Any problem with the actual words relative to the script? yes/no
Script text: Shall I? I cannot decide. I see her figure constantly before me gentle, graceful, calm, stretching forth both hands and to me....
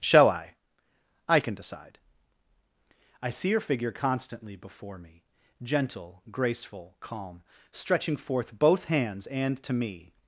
yes